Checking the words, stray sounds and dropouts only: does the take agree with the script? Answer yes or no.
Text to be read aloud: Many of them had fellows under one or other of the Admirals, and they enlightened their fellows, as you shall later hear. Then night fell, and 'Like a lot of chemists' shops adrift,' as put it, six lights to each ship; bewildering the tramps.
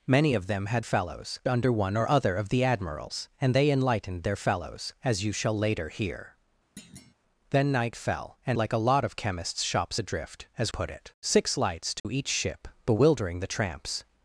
no